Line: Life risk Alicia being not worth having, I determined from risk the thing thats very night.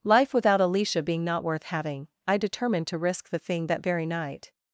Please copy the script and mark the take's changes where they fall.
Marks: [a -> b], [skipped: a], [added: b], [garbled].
Life [risk -> without] Alicia being not worth having, I determined [from -> to] risk the thing [thats -> that] very night.